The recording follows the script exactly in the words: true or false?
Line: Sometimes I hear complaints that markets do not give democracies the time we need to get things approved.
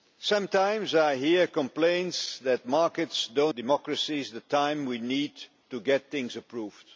false